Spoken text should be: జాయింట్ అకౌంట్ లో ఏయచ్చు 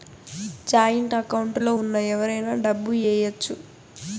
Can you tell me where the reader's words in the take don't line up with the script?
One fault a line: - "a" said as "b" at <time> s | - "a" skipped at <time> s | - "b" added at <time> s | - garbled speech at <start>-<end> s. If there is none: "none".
- "ఉన్న ఎవరైనా డబ్బు" added at 1.7 s